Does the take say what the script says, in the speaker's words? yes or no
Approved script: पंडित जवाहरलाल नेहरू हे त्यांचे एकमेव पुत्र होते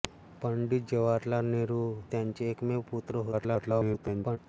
no